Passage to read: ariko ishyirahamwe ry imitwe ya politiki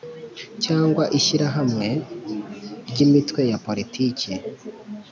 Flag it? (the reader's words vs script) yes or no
yes